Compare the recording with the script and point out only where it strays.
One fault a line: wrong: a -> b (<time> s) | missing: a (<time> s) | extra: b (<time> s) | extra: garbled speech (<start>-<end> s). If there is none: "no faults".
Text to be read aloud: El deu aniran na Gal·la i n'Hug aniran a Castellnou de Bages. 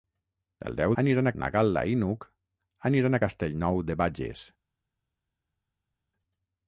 no faults